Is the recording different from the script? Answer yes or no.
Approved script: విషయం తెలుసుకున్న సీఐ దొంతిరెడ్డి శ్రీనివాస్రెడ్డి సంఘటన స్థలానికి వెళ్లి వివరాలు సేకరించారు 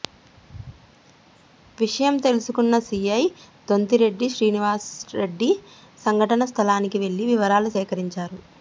no